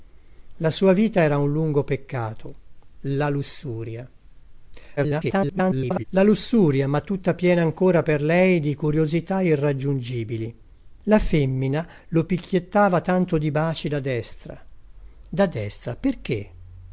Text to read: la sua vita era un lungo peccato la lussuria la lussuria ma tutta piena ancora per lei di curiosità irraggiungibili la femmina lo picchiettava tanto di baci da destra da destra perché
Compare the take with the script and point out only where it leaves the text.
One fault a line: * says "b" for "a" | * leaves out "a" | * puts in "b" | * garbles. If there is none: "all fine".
* garbles